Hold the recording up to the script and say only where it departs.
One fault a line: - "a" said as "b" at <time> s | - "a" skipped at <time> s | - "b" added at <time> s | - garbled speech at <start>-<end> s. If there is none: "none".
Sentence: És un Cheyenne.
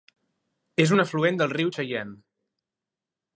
- "afluent del riu" added at 1.0 s